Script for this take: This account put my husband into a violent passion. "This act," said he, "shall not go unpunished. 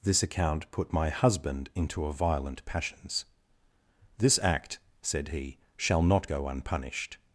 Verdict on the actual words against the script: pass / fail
fail